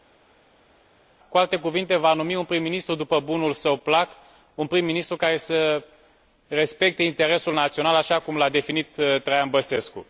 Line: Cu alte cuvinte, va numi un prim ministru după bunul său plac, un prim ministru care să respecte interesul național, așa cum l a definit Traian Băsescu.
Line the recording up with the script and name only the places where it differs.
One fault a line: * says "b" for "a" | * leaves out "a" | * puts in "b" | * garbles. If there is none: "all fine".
all fine